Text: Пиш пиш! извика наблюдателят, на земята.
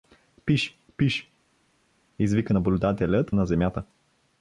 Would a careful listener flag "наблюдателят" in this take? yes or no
no